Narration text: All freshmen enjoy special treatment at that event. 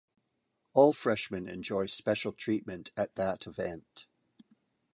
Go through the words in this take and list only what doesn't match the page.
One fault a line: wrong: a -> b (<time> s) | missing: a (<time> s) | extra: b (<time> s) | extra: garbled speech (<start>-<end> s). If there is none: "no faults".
no faults